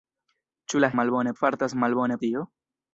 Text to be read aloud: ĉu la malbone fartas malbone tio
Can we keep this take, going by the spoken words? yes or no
yes